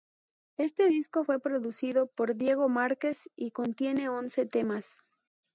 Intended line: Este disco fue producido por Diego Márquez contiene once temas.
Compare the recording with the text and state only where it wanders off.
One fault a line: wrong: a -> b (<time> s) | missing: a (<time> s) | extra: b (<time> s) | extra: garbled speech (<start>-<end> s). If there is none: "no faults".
extra: y (3.4 s)